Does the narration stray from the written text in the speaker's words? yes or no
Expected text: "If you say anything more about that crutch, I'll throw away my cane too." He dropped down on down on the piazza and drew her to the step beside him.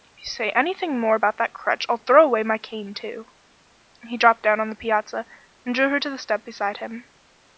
yes